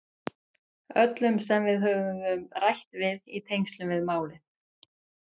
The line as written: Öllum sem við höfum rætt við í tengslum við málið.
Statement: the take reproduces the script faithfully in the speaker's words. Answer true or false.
true